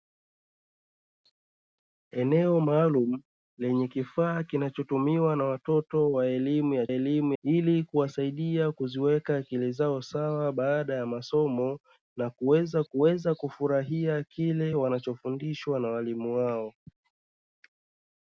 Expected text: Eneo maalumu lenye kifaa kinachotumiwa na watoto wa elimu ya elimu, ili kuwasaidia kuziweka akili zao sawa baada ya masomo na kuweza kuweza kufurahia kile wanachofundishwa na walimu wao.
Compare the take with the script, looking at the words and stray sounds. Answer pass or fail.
pass